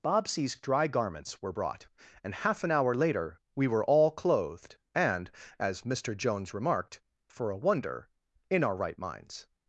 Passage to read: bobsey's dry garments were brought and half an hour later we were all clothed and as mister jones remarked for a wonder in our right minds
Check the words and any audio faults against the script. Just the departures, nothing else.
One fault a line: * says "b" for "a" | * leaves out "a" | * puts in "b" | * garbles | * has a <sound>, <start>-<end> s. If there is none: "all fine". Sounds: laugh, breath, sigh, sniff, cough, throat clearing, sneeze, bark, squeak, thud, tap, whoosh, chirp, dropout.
all fine